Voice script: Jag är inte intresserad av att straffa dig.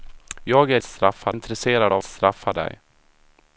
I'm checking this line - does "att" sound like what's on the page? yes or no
no